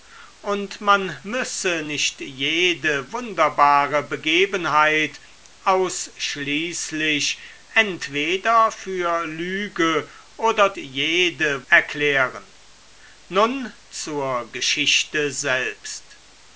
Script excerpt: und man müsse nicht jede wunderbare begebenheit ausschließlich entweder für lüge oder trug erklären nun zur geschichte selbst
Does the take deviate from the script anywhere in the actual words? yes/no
yes